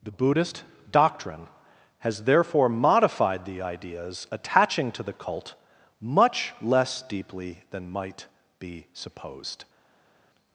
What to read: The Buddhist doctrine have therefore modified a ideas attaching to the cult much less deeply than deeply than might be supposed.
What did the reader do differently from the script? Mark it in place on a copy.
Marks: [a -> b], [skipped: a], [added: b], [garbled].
The Buddhist doctrine [have -> has] therefore modified [a -> the] ideas attaching to the cult much less deeply than [skipped: deeply than] might be supposed.